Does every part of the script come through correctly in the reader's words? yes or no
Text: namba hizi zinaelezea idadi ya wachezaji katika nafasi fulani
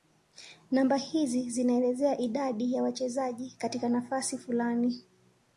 yes